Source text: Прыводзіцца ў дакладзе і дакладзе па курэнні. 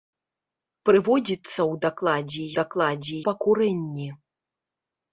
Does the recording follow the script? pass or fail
pass